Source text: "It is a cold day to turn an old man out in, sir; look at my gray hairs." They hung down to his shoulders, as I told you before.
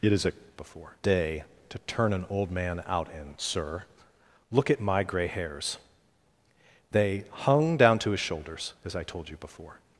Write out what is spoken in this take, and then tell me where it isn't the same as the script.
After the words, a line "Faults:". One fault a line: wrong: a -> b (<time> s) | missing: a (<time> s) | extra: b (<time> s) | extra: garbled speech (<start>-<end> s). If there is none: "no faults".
"It is a before day to turn an old man out in, sir; look at my gray hairs." They hung down to his shoulders, as I told you before.
Faults:
wrong: cold -> before (0.5 s)